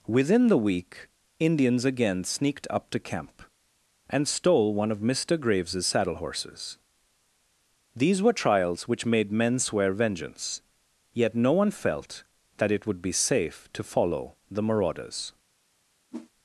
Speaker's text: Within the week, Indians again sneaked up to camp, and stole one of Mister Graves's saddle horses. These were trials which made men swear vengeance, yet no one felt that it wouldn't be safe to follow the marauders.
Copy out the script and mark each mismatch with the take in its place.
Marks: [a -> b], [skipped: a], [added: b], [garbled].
Within the week, Indians again sneaked up to camp, and stole one of Mister Graves's saddle horses. These were trials which made men swear vengeance, yet no one felt that it [wouldn't -> would] be safe to follow the marauders.